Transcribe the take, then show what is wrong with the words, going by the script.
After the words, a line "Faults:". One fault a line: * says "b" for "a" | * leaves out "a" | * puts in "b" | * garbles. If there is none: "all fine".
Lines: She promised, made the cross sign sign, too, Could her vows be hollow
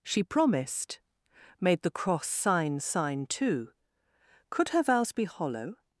She promised, made the cross sign sign, too, Could her vows be hollow
Faults:
all fine